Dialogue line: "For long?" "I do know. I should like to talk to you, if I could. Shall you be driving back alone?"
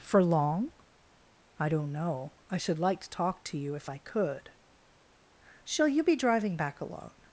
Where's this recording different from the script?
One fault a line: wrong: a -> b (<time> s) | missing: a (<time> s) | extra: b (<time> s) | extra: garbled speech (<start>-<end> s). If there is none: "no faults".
wrong: do -> don't (1.7 s)